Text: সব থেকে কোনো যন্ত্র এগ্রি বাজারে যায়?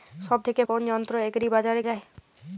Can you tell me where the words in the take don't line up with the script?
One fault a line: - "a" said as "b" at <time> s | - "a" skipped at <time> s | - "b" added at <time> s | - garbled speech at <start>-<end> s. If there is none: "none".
none